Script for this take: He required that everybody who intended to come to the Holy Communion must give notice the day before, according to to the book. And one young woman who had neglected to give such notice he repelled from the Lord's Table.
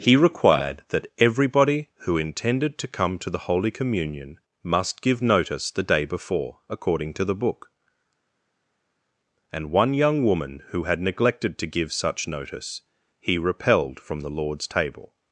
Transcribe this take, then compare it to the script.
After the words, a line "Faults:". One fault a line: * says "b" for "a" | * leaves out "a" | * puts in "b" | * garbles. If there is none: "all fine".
He required that everybody who intended to come to the Holy Communion must give notice the day before, according to the book. And one young woman who had neglected to give such notice he repelled from the Lord's Table.
Faults:
* leaves out "to"